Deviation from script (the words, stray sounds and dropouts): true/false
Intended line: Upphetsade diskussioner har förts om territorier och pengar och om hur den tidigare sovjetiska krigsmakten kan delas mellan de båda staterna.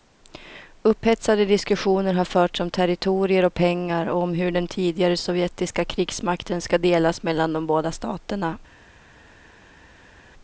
true